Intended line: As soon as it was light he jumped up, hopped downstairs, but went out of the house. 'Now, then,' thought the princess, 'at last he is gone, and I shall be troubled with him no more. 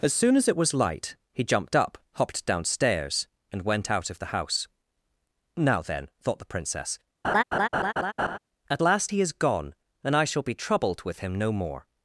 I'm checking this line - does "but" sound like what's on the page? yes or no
no